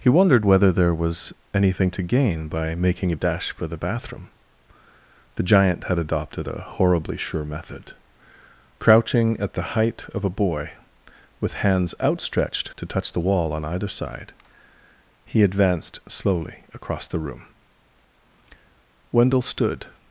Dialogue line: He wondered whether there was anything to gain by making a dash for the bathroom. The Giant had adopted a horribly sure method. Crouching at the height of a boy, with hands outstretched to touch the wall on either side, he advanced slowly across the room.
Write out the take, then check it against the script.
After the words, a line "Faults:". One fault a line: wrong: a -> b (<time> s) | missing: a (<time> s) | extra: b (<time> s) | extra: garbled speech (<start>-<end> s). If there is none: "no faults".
He wondered whether there was anything to gain by making a dash for the bathroom. The Giant had adopted a horribly sure method. Crouching at the height of a boy, with hands outstretched to touch the wall on either side, he advanced slowly across the room. Wendell stood
Faults:
extra: Wendell stood (19.1 s)